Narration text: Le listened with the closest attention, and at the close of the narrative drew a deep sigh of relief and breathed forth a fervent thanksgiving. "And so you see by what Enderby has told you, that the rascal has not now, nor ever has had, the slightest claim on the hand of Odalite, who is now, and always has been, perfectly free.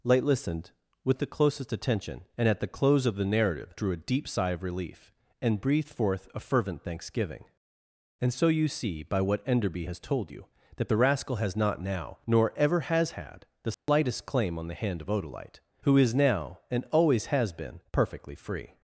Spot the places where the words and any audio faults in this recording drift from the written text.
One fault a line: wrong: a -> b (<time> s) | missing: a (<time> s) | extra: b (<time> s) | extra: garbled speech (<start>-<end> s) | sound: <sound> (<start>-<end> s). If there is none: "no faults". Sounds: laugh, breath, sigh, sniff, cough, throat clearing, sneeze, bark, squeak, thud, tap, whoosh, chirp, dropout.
wrong: Le -> Light (0.0 s)
sound: dropout (13.7-13.9 s)